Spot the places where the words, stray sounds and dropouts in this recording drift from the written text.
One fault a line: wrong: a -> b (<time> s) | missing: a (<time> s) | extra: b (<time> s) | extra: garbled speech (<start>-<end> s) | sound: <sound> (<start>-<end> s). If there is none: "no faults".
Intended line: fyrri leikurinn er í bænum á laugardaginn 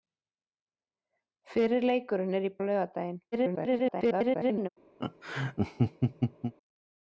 missing: bænum (2.5 s)
extra: garbled speech (3.3-4.7 s)
sound: laugh (5.0-6.5 s)